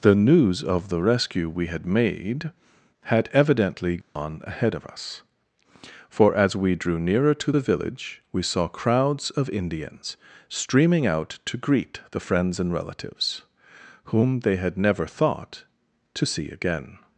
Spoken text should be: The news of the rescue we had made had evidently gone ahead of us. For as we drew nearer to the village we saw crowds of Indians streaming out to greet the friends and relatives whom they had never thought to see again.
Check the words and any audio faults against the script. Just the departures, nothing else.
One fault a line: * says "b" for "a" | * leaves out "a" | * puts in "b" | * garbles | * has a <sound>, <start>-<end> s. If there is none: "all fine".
* has a dropout, 4.0-4.2 s